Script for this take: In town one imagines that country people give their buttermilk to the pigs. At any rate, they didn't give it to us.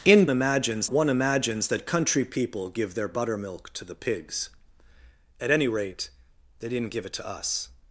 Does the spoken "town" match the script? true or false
false